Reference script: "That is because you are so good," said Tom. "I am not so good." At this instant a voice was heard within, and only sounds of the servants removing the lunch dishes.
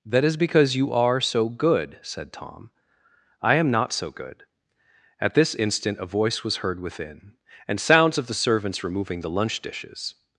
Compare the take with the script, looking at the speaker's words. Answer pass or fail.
fail